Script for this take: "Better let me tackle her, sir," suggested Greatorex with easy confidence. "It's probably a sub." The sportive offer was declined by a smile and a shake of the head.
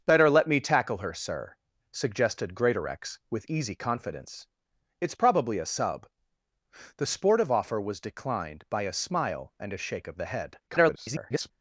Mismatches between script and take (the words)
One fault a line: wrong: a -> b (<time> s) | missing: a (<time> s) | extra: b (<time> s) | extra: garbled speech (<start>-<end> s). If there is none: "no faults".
extra: garbled speech (10.7-11.5 s)